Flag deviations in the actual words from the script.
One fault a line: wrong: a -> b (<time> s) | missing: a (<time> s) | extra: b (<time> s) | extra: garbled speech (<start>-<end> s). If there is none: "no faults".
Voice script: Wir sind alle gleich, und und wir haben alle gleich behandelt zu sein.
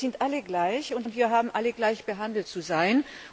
no faults